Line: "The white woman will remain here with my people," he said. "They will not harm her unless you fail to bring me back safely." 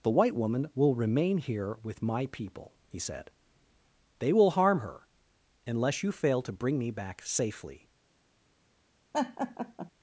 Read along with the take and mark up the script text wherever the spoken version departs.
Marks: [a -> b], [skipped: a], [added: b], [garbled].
"The white woman will remain here with my people," he said. "They will [skipped: not] harm her unless you fail to bring me back safely."